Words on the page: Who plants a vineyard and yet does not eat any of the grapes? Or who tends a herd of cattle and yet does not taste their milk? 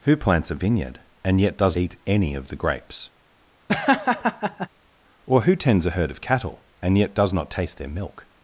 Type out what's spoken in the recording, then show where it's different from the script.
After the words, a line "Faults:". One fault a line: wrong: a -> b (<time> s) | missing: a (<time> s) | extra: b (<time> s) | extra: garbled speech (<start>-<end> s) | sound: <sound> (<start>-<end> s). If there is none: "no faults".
Who plants a vineyard and yet does eat any of the grapes? Or who tends a herd of cattle and yet does not taste their milk?
Faults:
missing: not (1.8 s)
sound: laugh (3.7-4.7 s)